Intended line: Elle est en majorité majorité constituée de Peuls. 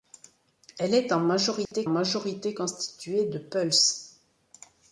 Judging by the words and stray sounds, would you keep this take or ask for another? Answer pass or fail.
fail